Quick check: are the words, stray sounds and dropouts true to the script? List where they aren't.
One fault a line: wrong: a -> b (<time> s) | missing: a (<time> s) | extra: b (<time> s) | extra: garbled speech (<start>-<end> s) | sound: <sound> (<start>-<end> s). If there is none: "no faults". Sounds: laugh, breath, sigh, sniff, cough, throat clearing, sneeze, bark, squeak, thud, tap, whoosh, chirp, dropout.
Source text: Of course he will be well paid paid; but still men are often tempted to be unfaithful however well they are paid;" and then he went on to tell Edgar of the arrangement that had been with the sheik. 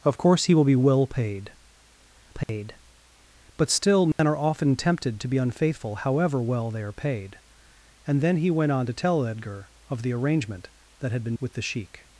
sound: dropout (2.4-2.5 s)
sound: dropout (4.1-4.2 s)